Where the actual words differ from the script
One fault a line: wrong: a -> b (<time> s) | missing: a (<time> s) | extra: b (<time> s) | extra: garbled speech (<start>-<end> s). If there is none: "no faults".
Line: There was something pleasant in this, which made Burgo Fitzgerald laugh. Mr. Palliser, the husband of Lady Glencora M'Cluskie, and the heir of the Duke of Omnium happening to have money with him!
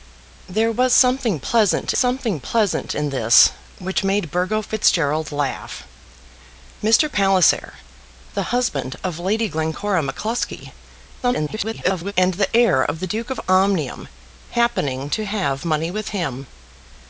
extra: something pleasant (1.9 s)
extra: garbled speech (11.2-12.1 s)